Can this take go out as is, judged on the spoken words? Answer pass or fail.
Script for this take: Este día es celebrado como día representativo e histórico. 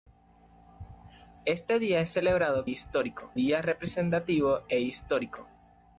fail